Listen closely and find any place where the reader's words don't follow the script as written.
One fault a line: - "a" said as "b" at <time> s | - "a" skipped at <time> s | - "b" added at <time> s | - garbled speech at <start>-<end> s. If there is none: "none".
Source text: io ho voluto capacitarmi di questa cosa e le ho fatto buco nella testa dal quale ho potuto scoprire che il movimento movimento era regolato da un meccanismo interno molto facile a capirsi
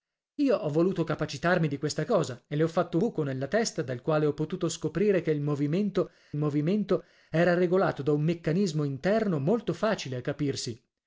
none